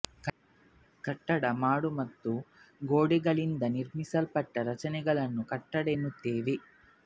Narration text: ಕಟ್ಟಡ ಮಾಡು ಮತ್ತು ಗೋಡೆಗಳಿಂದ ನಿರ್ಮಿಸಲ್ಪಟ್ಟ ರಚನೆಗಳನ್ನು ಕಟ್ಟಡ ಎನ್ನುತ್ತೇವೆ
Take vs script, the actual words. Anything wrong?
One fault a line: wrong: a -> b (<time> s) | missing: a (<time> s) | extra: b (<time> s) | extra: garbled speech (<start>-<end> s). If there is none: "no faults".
no faults